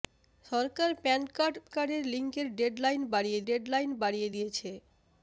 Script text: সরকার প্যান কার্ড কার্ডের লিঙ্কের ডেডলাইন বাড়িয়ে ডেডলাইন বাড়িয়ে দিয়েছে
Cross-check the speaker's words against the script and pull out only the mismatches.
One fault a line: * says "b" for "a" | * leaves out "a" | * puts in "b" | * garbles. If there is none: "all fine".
all fine